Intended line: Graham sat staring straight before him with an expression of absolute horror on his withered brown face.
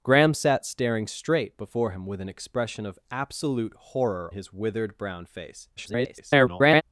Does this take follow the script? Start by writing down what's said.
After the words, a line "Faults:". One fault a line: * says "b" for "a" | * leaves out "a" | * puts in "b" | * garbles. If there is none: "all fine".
Graham sat staring straight before him with an expression of absolute horror his withered brown face. [garbled]
Faults:
* leaves out "on"
* garbles